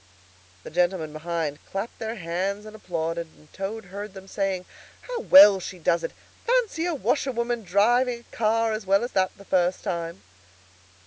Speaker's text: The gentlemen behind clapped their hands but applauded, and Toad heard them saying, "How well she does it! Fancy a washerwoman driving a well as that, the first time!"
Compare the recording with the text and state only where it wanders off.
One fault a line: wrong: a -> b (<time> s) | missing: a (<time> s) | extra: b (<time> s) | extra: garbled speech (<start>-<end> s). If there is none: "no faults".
wrong: but -> and (2.6 s)
extra: car as (8.3 s)